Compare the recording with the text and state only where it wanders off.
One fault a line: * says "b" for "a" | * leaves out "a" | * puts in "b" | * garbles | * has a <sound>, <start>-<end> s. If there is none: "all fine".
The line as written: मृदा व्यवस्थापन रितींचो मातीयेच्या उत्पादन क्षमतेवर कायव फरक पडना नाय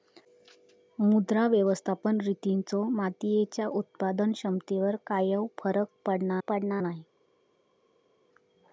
* puts in "पडना"